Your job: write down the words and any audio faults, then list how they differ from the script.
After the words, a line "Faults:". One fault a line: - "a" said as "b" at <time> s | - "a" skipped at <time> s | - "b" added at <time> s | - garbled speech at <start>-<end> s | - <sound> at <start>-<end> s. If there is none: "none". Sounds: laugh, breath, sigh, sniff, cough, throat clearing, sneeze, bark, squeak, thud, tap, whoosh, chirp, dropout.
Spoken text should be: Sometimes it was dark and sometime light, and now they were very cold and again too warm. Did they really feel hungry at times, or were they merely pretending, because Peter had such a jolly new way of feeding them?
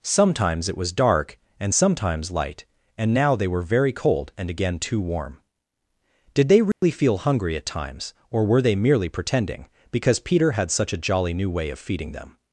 Sometimes it was dark and sometimes light, and now they were very cold and again too warm. Did they really feel hungry at times, or were they merely pretending, because Peter had such a jolly new way of feeding them?
Faults:
- "sometime" said as "sometimes" at 1.7 s
- dropout at 6.7-6.8 s